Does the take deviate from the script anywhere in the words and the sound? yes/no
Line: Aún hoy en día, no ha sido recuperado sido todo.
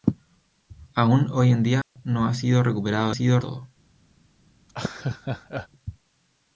yes